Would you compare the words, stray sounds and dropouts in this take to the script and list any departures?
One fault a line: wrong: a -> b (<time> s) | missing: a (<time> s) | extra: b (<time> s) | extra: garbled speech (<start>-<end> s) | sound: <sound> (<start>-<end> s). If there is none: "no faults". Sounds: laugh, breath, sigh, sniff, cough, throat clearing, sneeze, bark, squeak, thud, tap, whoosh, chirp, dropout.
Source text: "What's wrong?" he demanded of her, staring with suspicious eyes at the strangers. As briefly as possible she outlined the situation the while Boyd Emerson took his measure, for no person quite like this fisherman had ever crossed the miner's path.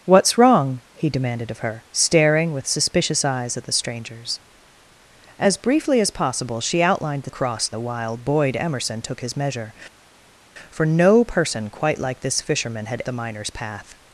wrong: situation -> crossed (7.3 s)
missing: ever crossed (13.0 s)